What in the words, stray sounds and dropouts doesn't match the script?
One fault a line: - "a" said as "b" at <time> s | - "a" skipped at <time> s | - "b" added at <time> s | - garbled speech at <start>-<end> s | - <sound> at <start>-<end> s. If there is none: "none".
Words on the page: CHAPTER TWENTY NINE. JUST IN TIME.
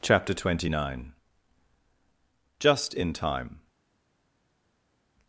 none